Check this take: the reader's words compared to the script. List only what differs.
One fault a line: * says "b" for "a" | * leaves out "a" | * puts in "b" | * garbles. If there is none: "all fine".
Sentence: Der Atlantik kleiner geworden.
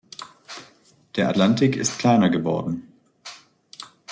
* puts in "ist"